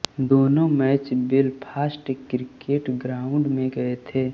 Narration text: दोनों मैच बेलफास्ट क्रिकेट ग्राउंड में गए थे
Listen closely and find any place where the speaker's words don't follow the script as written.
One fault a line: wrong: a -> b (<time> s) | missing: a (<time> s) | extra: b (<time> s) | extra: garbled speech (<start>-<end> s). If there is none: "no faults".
no faults